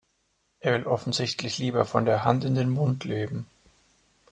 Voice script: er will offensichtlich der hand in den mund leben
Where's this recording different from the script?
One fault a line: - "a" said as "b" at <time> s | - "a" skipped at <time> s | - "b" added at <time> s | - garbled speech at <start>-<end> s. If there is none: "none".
- "lieber von" added at 1.6 s